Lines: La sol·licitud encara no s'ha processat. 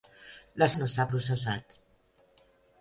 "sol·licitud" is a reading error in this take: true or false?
true